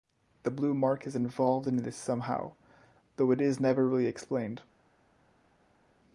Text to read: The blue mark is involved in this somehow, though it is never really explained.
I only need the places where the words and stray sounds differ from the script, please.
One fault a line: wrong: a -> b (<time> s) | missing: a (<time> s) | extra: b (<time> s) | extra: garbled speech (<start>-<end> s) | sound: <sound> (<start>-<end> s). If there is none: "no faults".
no faults